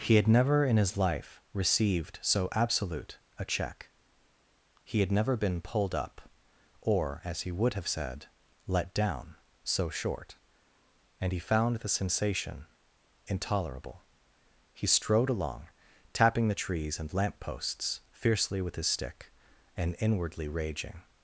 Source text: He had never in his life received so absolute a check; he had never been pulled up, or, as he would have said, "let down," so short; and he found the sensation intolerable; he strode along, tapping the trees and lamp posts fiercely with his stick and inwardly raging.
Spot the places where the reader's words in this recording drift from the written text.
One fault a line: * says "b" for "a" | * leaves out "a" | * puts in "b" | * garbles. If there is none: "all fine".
all fine